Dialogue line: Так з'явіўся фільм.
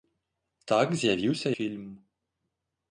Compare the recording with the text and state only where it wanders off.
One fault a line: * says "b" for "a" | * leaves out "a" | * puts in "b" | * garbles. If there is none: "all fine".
all fine